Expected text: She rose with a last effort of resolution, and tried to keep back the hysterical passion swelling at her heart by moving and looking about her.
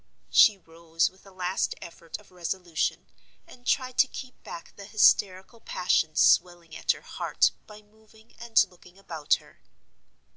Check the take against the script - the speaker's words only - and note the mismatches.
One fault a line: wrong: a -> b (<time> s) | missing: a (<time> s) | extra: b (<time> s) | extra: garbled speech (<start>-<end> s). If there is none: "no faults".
no faults